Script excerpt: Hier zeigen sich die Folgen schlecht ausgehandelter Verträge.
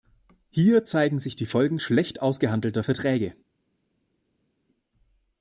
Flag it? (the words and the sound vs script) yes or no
no